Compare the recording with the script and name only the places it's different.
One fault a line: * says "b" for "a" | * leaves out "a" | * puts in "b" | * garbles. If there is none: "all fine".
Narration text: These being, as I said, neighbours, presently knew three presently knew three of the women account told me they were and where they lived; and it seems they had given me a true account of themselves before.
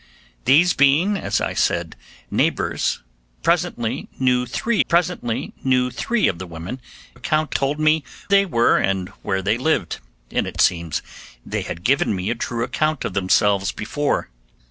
all fine